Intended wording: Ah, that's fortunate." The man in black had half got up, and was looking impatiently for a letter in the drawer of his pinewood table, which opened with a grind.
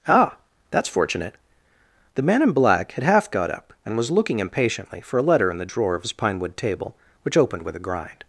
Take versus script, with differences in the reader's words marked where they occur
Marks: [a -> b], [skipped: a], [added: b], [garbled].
Ah, that's fortunate." The man in black had half got up, and was looking impatiently for a letter in the drawer of his pinewood table, which opened with a grind.